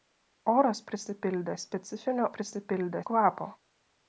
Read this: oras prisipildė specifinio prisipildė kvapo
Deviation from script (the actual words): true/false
false